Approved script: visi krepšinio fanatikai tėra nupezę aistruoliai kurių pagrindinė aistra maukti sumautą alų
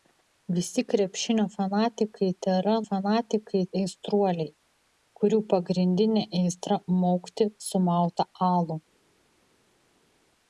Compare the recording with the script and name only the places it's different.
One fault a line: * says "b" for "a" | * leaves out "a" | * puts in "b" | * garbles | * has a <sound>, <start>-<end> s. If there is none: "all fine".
* says "fanatikai" for "nupezę"